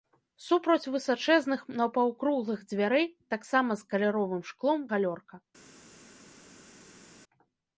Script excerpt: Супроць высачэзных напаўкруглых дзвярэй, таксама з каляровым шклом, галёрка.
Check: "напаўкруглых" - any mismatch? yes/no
no